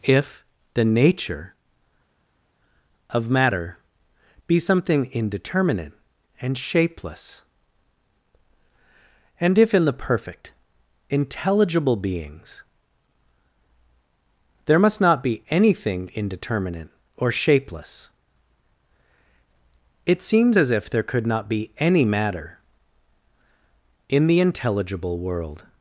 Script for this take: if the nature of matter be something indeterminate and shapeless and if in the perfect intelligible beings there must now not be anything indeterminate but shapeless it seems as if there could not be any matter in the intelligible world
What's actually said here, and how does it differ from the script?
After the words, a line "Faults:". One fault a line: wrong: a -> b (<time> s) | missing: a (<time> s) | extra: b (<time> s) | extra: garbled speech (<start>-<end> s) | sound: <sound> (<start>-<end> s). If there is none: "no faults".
if the nature of matter be something indeterminate and shapeless and if in the perfect intelligible beings there must not be anything indeterminate or shapeless it seems as if there could not be any matter in the intelligible world
Faults:
missing: now (15.0 s)
wrong: but -> or (17.1 s)